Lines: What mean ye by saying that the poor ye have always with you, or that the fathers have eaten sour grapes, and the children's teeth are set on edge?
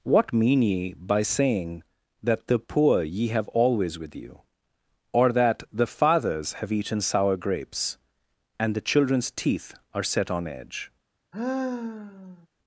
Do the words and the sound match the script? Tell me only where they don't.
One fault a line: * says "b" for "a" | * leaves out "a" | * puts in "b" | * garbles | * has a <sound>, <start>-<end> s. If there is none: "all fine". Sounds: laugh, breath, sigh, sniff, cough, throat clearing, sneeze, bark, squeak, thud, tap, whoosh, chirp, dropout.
* has a sigh, 11.3-12.5 s